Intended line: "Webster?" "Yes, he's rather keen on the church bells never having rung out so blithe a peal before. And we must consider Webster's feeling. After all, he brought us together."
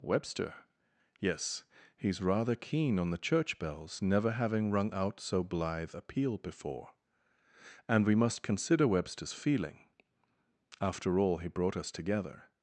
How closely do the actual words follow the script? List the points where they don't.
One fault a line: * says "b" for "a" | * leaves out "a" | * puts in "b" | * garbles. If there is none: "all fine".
all fine